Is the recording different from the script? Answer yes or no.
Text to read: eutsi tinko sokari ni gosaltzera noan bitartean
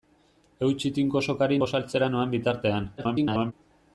yes